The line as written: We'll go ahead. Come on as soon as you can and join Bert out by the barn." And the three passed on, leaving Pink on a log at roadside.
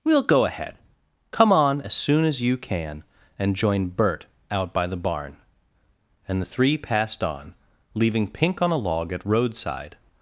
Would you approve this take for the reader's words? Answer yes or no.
yes